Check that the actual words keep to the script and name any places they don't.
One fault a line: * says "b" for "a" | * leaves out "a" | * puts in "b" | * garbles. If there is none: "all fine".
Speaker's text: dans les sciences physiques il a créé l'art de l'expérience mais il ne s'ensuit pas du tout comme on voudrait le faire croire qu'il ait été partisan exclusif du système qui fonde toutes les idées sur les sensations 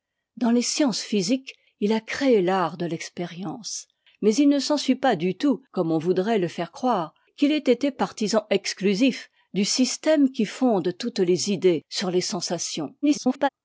* garbles